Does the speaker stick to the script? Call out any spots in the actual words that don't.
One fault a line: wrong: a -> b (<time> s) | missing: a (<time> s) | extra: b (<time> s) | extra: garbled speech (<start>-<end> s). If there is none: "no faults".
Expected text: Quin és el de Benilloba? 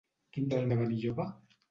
no faults